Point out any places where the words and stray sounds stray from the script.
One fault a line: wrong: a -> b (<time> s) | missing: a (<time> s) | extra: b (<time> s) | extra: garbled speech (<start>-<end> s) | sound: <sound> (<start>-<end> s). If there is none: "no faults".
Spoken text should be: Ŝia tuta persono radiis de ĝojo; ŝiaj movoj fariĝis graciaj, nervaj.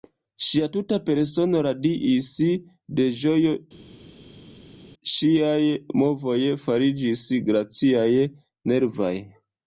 no faults